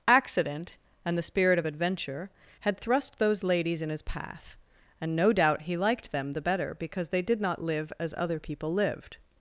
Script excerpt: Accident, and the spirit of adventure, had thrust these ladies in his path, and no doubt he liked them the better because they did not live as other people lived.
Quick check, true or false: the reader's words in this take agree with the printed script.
false